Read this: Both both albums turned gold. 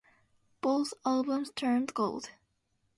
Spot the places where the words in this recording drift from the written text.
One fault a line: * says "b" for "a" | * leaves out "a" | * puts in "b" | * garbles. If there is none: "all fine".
* leaves out "both"